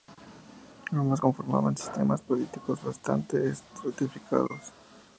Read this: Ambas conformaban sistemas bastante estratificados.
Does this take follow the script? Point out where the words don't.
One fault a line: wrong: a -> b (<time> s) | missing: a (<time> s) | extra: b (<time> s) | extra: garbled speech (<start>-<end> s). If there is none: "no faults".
extra: políticos (2.2 s)